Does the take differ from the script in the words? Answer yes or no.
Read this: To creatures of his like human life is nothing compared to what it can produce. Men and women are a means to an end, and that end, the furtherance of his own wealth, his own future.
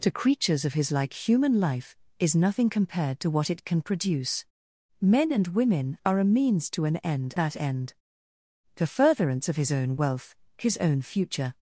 yes